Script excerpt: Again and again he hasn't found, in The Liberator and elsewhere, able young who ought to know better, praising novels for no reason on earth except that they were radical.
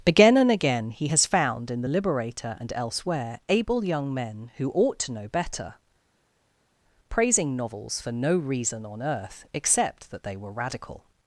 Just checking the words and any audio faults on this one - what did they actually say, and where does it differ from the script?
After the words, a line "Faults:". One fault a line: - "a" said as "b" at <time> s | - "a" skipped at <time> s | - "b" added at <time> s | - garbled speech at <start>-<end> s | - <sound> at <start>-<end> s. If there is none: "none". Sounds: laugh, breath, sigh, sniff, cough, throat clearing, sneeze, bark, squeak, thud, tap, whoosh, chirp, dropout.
Again and again he has found, in The Liberator and elsewhere, able young men, who ought to know better, praising novels for no reason on earth except that they were radical.
Faults:
- "hasn't" said as "has" at 1.1 s
- "men" added at 4.1 s